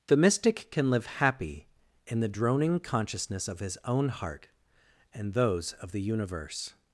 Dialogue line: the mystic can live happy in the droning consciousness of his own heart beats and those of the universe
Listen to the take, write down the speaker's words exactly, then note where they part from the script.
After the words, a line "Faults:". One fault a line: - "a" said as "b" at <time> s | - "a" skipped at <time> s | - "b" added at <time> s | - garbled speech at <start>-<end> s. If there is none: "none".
the mystic can live happy in the droning consciousness of his own heart and those of the universe
Faults:
- "beats" skipped at 4.5 s